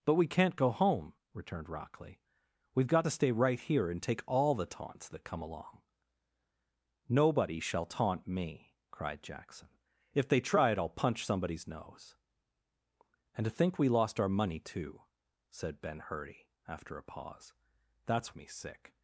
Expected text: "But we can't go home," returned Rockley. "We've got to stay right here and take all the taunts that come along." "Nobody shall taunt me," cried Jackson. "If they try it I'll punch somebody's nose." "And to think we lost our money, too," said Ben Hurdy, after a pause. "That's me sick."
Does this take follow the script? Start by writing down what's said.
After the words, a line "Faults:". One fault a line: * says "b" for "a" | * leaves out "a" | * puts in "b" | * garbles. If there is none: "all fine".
"But we can't go home," returned Rockley. "We've got to stay right here and take all the taunts that come along." "Nobody shall taunt me," cried Jackson. "If they try it I'll punch somebody's nose." "And to think we lost our money, too," said Ben Hurdy, after a pause. "That's me sick."
Faults:
all fine